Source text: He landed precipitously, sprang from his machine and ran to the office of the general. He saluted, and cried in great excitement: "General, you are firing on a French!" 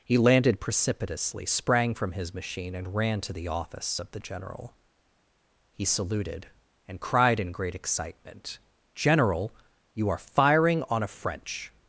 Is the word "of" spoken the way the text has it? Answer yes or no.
yes